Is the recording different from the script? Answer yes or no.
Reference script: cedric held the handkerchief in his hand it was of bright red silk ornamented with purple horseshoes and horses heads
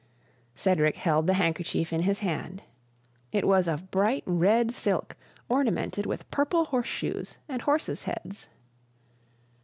no